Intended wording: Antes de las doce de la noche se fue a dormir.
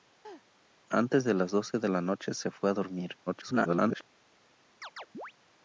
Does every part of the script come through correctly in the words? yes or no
no